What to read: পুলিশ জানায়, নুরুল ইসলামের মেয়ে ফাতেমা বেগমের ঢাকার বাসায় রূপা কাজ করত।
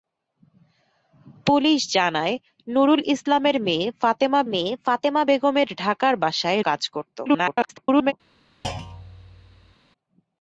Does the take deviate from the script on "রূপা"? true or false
true